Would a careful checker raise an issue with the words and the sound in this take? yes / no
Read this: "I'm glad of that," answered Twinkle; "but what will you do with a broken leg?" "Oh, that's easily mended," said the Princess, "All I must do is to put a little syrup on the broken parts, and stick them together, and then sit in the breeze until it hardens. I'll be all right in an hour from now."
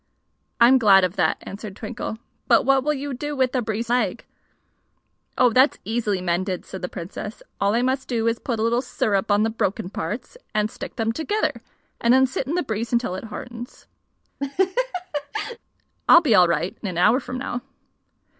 yes